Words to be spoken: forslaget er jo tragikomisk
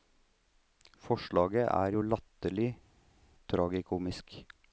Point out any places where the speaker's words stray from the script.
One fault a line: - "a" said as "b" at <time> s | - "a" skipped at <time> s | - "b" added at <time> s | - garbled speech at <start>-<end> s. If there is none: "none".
- "latterlig" added at 2.0 s